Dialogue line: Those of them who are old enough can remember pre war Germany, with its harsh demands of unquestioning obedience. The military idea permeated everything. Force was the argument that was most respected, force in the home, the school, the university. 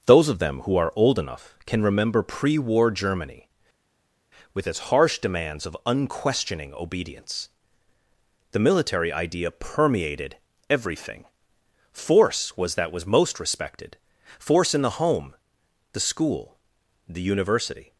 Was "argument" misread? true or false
true